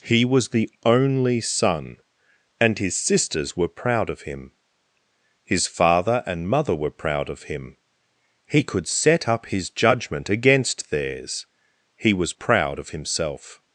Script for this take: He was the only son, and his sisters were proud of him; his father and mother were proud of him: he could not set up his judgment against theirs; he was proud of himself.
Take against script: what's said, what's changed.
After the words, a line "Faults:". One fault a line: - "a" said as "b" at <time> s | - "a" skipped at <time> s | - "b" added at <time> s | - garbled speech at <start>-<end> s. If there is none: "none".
He was the only son, and his sisters were proud of him; his father and mother were proud of him: he could set up his judgment against theirs; he was proud of himself.
Faults:
- "not" skipped at 8.9 s